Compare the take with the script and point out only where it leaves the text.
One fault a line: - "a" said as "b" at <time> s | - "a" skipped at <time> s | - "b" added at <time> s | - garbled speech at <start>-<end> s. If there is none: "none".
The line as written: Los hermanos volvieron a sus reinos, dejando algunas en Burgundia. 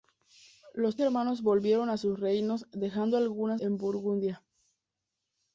none